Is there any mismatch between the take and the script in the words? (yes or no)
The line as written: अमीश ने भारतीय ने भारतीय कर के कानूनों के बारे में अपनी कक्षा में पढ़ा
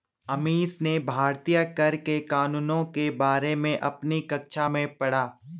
yes